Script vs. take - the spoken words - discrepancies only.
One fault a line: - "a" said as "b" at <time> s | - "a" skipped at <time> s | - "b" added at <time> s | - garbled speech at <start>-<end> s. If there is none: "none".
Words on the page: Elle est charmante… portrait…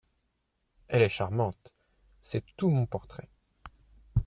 - "c'est tout mon" added at 2.2 s